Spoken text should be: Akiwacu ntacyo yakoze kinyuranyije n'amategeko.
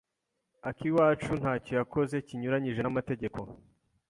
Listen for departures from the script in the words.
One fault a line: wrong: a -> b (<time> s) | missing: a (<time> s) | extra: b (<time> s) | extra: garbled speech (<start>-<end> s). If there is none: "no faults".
no faults